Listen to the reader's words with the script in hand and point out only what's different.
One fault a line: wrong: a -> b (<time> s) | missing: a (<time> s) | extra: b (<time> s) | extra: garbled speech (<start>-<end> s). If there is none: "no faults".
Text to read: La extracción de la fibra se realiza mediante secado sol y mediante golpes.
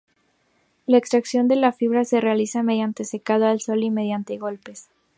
extra: al (3.5 s)